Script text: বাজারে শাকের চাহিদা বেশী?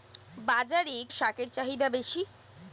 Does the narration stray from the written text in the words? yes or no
no